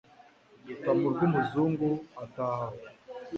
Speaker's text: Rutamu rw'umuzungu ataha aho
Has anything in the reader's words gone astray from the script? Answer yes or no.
no